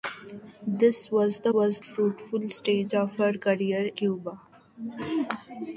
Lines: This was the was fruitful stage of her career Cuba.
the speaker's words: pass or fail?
pass